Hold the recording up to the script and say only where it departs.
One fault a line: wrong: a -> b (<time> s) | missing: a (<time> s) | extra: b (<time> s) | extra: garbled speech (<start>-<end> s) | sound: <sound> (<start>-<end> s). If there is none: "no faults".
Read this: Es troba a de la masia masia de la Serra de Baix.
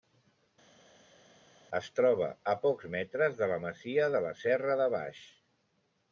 extra: pocs metres (2.6 s)
missing: masia (4.1 s)